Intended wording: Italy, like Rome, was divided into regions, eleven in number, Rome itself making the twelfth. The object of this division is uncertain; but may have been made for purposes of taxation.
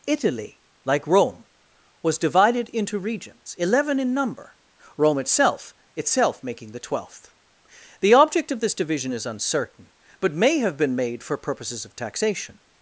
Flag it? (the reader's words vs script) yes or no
yes